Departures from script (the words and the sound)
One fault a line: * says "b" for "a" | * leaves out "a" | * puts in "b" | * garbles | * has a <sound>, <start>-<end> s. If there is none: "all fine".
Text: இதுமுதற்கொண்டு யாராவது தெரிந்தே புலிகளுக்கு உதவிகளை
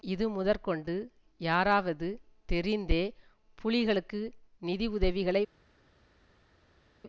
* puts in "நிதி"